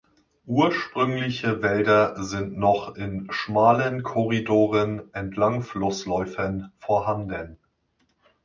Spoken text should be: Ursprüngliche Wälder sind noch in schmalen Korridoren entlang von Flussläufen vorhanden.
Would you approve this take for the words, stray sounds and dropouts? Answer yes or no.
no